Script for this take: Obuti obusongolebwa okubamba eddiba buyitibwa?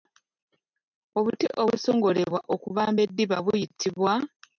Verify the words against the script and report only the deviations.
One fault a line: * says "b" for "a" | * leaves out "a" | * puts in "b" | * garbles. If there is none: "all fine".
all fine